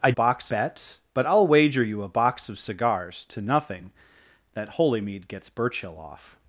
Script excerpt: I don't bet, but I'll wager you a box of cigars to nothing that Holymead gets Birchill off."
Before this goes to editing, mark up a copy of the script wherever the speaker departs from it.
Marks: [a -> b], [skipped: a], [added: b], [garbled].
I [don't -> box] bet, but I'll wager you a box of cigars to nothing that Holymead gets Birchill off."